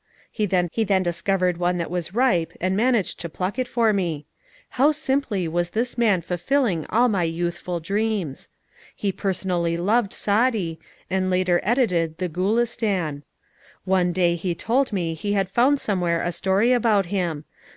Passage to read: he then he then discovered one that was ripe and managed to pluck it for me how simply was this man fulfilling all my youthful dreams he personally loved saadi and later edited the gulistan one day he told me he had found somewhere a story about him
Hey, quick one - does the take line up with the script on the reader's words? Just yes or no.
yes